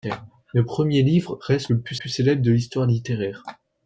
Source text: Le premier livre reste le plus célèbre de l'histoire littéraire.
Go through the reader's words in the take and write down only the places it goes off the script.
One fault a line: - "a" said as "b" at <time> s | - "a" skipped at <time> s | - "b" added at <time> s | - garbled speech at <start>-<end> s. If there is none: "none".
- "plus" added at 1.9 s